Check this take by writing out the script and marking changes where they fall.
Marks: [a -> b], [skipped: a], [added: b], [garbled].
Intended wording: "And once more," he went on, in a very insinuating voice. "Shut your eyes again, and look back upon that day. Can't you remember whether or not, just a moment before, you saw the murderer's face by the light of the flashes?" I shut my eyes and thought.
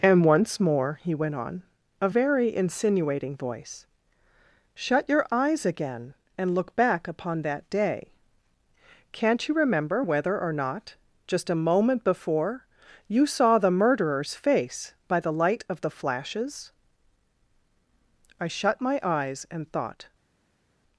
"And once more," he went on, [skipped: in] a very insinuating voice. "Shut your eyes again, and look back upon that day. Can't you remember whether or not, just a moment before, you saw the murderer's face by the light of the flashes?" I shut my eyes and thought.